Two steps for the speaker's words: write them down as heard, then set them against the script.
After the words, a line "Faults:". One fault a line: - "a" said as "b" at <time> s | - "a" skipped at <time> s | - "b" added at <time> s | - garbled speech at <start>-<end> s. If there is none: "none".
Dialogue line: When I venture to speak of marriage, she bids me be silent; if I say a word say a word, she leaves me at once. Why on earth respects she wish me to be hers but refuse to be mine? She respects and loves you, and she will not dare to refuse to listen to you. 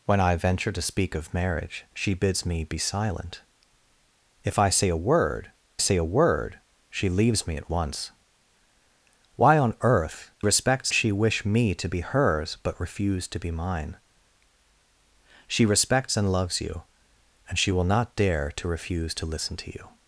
When I venture to speak of marriage, she bids me be silent; if I say a word say a word, she leaves me at once. Why on earth respects she wish me to be hers but refuse to be mine? She respects and loves you, and she will not dare to refuse to listen to you.
Faults:
none